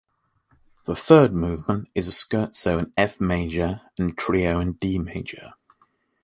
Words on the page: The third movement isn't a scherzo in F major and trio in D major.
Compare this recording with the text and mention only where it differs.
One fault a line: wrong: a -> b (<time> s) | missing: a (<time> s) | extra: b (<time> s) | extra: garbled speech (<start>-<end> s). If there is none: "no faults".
wrong: isn't -> is (1.9 s)